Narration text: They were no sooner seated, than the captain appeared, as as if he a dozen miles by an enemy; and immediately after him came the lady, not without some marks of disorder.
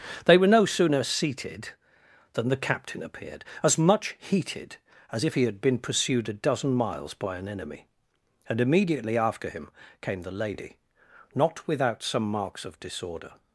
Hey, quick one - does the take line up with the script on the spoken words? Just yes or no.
no